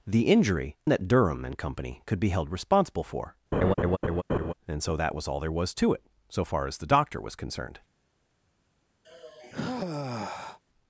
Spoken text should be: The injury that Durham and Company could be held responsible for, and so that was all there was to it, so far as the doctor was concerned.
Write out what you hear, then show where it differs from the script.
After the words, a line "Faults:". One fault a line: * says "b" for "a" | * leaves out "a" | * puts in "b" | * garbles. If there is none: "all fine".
The injury that Durham and Company could be held responsible for, and so that was all there was to it, so far as the doctor was concerned.
Faults:
all fine